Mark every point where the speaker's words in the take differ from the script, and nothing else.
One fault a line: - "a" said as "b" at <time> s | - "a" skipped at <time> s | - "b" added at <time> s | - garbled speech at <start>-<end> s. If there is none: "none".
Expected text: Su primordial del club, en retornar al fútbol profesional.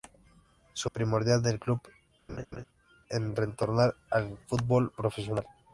none